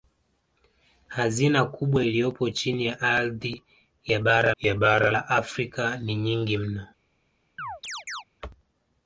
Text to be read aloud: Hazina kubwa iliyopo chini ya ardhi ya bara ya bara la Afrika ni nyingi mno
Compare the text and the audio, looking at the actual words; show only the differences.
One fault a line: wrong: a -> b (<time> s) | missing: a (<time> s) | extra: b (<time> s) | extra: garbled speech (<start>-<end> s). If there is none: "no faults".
no faults